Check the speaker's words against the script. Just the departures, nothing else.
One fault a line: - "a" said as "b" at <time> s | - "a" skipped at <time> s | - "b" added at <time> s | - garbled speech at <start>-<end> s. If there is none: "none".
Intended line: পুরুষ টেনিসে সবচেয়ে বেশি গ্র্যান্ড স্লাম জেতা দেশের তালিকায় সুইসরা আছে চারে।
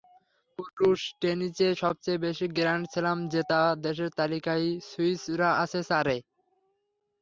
none